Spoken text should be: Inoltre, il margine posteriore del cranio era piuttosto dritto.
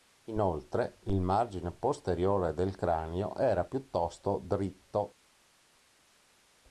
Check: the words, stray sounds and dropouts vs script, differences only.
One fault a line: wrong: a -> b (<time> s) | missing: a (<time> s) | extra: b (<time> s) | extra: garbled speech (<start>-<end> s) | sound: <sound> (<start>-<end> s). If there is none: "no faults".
no faults